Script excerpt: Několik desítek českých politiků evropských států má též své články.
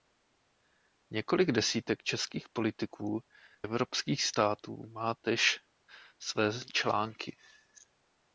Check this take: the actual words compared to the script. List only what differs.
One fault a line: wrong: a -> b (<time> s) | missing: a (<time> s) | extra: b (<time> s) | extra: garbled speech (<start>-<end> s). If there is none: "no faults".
no faults